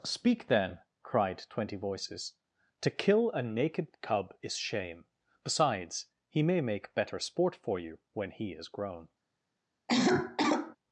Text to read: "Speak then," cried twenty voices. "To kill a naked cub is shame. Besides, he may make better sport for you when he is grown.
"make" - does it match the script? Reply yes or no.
yes